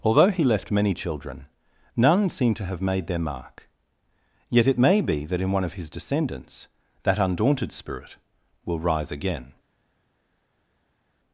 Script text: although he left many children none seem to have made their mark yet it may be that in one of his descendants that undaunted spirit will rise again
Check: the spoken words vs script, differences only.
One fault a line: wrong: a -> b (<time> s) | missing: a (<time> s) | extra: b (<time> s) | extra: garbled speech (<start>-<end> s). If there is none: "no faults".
no faults